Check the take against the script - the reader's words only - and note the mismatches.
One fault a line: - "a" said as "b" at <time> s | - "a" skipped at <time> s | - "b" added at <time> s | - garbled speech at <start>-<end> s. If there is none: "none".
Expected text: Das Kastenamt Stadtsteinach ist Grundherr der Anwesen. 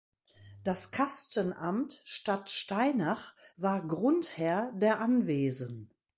- "ist" said as "war" at 3.6 s